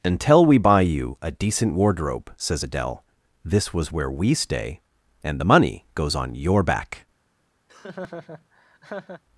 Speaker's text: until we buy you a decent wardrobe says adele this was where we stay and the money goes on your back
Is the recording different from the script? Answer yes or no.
no